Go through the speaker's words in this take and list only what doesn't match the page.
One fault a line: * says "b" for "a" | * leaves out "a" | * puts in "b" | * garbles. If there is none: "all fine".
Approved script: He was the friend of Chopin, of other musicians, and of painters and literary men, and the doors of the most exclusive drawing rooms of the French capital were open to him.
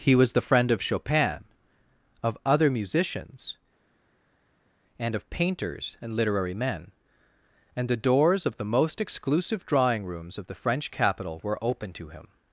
all fine